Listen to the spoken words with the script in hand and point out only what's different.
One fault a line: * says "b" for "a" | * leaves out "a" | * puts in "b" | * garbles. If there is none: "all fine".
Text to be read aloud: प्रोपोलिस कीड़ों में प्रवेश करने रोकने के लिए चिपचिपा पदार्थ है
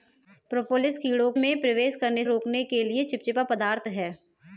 all fine